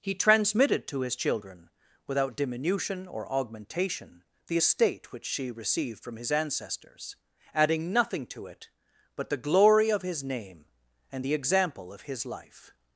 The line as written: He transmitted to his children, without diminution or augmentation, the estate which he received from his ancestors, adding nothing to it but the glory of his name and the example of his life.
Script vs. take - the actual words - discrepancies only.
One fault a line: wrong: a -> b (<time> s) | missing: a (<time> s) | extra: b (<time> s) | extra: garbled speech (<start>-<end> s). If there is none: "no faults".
wrong: he -> she (5.2 s)